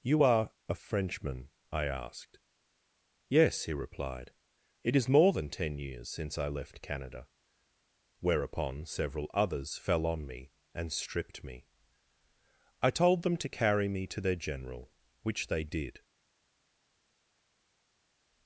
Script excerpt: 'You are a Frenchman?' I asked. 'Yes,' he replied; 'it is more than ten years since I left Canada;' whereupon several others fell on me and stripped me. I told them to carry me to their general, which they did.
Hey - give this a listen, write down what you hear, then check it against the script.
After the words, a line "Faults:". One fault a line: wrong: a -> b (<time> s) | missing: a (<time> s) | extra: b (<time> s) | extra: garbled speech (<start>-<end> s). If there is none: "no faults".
'You are a Frenchman?' I asked. 'Yes,' he replied; 'it is more than ten years since I left Canada;' whereupon several others fell on me and stripped me. I told them to carry me to their general, which they did.
Faults:
no faults